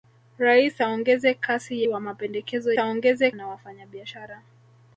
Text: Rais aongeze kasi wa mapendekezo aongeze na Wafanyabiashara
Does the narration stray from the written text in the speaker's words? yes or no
no